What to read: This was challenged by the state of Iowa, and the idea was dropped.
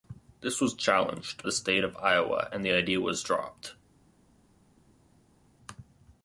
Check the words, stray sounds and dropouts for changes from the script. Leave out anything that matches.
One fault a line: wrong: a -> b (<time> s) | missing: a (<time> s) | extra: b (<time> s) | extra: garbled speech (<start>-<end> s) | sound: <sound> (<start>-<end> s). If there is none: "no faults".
missing: by (1.4 s)